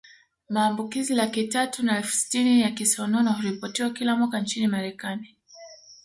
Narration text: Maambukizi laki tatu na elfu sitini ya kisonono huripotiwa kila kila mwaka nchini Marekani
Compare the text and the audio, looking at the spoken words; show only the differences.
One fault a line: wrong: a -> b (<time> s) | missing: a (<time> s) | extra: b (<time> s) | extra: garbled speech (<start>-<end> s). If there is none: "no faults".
missing: kila (4.2 s)